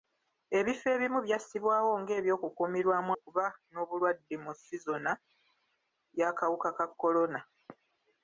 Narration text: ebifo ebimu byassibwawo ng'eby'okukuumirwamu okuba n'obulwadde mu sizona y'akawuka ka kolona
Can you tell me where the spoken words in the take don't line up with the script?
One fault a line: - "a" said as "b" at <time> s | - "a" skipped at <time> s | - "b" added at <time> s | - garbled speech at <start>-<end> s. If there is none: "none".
none